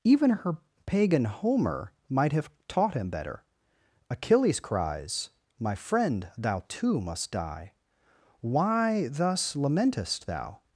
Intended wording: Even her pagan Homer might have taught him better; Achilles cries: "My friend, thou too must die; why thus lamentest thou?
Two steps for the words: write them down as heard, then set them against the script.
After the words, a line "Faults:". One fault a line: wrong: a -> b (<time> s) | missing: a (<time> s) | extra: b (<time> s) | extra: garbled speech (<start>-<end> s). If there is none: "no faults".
Even her pagan Homer might have taught him better; Achilles cries: "My friend, thou too must die; why thus lamentest thou?
Faults:
no faults